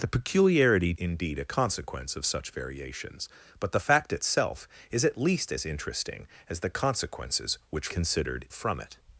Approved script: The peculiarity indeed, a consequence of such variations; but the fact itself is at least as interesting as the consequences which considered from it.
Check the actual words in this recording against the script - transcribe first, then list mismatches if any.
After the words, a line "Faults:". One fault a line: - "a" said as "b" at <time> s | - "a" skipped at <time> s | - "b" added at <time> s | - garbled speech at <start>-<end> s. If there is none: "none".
The peculiarity indeed, a consequence of such variations; but the fact itself is at least as interesting as the consequences which considered from it.
Faults:
none